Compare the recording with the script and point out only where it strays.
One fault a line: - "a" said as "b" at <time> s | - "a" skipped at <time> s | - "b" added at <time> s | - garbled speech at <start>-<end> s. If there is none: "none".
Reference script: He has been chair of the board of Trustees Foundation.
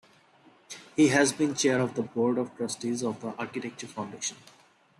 - "of The Architecture" added at 3.0 s